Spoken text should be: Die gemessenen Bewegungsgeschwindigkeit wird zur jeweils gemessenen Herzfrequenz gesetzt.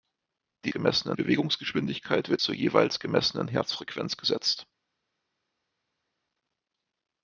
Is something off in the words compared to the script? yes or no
no